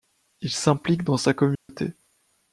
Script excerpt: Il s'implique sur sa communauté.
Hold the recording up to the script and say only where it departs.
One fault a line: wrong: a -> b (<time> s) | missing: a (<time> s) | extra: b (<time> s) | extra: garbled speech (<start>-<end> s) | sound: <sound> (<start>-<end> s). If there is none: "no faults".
wrong: sur -> dans (1.0 s)
sound: dropout (1.6-1.7 s)